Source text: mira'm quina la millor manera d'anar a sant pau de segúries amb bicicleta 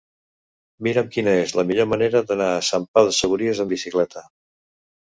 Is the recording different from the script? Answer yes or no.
yes